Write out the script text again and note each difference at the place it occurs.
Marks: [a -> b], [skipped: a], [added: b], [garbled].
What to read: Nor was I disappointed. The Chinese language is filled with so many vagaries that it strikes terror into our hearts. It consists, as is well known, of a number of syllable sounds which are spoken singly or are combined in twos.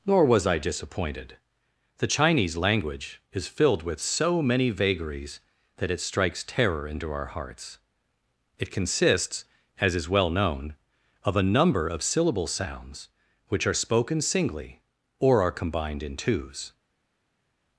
Nor was I disappointed. The Chinese language is filled with so many vagaries that it strikes terror into our hearts. It consists, as is well known, of a number of syllable sounds which are spoken singly or are combined in twos.